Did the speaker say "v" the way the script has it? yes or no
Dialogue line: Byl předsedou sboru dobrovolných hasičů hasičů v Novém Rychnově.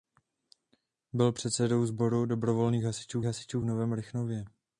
yes